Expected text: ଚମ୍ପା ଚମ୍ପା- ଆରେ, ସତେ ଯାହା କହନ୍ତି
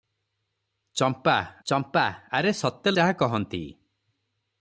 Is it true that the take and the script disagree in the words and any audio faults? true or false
false